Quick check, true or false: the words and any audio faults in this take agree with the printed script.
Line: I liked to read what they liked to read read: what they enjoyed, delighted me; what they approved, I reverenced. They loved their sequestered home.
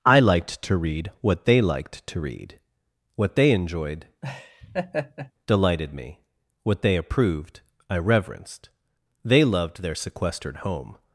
false